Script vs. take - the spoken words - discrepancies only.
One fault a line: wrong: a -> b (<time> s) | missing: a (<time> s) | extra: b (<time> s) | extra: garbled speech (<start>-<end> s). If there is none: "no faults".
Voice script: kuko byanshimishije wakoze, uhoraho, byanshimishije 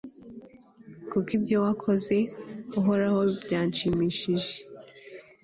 wrong: byanshimishije -> ibyo (1.4 s)